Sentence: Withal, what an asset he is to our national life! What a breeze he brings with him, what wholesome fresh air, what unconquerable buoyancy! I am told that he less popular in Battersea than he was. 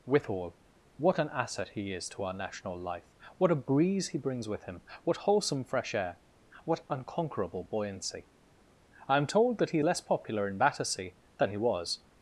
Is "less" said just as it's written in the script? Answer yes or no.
yes